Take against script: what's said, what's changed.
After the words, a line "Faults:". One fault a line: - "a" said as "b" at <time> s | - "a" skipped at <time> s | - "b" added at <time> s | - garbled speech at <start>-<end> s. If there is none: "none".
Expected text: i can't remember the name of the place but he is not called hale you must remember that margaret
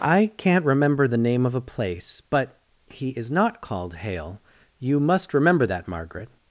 i can't remember the name of a place but he is not called hale you must remember that margaret
Faults:
- "the" said as "a" at 1.5 s